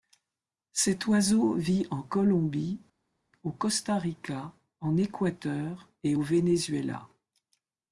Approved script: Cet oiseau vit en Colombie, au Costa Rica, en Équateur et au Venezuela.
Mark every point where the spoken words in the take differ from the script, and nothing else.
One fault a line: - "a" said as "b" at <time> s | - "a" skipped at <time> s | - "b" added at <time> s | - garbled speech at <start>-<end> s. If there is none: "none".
none